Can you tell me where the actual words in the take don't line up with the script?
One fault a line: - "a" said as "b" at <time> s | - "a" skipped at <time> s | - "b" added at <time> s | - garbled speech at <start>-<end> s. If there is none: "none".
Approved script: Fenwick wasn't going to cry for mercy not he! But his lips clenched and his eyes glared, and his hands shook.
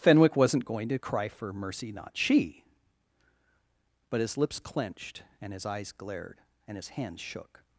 - "he" said as "she" at 2.1 s